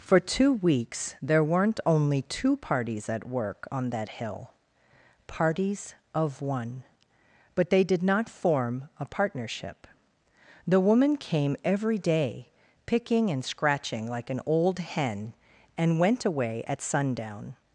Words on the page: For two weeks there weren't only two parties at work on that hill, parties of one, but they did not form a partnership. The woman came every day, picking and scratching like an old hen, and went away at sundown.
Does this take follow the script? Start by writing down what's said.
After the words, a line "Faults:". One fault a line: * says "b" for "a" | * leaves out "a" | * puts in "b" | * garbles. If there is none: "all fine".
For two weeks there weren't only two parties at work on that hill, parties of one, but they did not form a partnership. The woman came every day, picking and scratching like an old hen, and went away at sundown.
Faults:
all fine